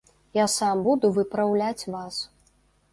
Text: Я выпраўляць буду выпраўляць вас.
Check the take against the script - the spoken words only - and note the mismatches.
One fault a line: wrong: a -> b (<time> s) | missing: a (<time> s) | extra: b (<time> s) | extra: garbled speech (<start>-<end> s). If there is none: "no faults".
wrong: выпраўляць -> сам (0.5 s)